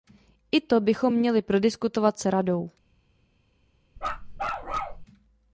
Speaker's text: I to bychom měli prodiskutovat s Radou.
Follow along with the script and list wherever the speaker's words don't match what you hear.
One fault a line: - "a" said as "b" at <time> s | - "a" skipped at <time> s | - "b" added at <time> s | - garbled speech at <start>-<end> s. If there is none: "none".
none